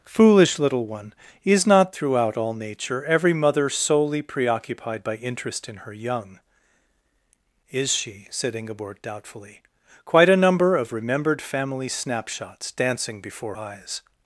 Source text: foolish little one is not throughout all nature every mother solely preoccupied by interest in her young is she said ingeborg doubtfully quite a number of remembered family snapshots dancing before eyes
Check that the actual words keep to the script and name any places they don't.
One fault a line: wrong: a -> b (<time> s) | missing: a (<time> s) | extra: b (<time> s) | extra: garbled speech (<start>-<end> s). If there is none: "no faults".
no faults